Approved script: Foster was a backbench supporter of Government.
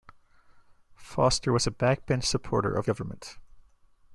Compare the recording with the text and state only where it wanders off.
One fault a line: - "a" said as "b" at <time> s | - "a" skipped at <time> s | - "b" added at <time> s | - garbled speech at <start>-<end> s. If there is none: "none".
none